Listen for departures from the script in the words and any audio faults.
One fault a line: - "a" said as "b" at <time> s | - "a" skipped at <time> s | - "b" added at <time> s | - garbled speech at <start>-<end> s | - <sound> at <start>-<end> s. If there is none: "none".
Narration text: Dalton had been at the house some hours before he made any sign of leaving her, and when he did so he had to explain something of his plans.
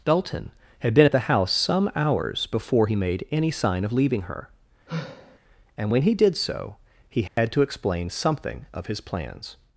- sigh at 4.9-5.4 s
- dropout at 7.3-7.4 s